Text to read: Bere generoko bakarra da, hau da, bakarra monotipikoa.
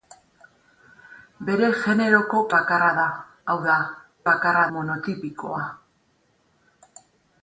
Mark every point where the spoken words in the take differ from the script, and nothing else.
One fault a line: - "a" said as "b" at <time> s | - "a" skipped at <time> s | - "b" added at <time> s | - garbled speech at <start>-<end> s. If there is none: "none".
none